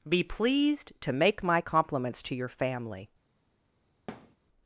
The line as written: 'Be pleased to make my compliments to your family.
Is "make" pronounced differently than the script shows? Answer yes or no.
no